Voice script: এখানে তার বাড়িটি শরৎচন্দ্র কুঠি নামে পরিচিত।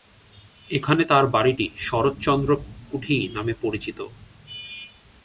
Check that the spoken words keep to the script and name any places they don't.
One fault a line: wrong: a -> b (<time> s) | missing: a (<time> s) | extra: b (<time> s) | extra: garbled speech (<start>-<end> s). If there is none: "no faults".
no faults